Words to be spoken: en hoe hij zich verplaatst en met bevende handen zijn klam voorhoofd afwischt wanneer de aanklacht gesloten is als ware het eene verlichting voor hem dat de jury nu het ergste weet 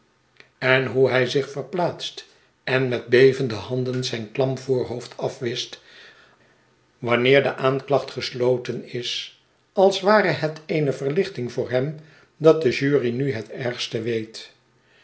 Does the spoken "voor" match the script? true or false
true